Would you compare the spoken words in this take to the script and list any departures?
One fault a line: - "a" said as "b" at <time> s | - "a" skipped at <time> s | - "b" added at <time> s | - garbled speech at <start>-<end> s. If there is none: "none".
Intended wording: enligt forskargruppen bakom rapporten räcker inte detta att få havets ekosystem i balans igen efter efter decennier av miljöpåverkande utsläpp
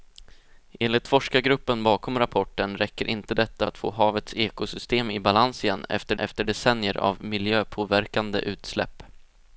none